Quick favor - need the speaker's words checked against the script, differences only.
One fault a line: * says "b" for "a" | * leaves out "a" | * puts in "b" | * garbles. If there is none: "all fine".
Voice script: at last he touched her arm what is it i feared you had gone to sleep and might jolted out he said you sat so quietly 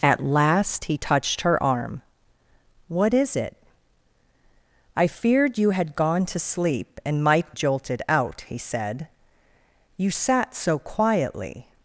all fine